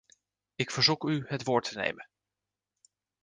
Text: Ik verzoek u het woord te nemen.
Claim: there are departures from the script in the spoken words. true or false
false